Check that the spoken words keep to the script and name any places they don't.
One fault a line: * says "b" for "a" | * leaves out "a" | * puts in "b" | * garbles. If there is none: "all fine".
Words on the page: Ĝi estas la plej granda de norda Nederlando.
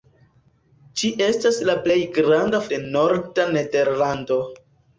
all fine